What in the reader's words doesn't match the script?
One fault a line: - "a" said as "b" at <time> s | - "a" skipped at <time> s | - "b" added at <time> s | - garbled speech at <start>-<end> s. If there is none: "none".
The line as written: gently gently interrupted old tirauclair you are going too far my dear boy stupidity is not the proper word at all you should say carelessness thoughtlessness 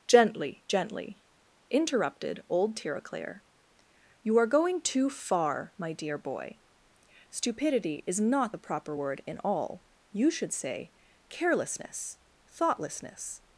- "at" said as "in" at 9.3 s